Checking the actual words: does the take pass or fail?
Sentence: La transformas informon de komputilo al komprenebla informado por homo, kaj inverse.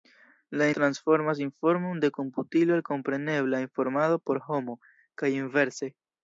pass